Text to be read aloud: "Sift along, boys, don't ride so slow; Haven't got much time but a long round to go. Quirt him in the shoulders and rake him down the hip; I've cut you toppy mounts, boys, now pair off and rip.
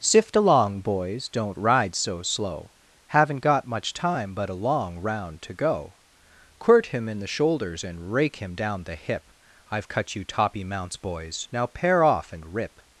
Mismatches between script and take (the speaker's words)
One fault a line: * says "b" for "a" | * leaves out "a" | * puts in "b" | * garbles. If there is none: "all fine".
all fine